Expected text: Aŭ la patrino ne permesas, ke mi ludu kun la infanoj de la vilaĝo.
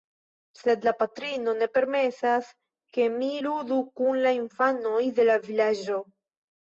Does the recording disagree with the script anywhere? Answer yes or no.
yes